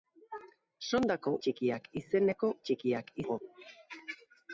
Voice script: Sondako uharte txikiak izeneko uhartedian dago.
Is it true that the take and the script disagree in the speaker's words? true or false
true